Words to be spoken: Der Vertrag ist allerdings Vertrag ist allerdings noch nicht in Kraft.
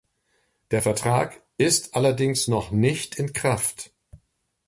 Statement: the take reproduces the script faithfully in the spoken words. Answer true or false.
false